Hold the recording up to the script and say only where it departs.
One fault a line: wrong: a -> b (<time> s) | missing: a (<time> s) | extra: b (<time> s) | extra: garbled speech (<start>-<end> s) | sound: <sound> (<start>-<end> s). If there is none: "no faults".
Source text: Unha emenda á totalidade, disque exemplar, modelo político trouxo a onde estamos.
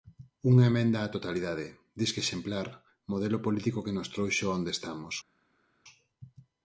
extra: que nos (3.9 s)